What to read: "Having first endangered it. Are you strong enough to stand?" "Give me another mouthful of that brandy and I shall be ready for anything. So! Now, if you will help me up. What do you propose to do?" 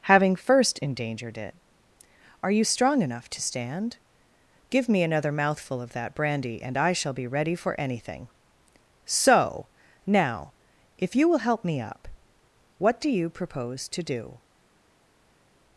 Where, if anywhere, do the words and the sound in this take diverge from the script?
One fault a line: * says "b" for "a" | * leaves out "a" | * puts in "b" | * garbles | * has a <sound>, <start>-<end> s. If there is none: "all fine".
all fine